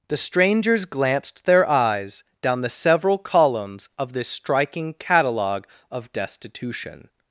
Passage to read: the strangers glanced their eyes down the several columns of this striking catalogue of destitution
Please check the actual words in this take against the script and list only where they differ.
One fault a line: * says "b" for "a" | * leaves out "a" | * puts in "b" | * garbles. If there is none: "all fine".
all fine